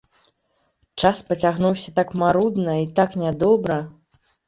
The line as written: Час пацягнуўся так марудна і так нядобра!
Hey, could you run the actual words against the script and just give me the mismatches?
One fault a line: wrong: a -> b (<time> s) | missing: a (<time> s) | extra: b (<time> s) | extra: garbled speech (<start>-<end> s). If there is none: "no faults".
no faults